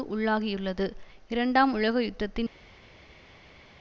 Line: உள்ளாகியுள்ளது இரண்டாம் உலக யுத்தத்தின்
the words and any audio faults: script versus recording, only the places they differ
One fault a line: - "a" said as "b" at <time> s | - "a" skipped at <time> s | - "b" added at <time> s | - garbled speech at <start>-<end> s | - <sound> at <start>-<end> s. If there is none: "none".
none